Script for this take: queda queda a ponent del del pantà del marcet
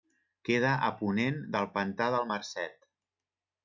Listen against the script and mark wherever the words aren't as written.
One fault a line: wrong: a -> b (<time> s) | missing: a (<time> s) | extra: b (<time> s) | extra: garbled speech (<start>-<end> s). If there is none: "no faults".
missing: queda (0.7 s)
missing: del (1.7 s)